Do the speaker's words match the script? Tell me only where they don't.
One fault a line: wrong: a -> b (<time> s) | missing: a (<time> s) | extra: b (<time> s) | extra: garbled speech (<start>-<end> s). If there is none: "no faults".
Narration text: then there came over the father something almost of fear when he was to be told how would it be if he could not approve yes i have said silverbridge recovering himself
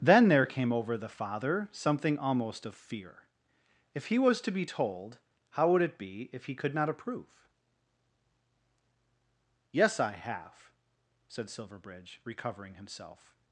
wrong: when -> if (3.9 s)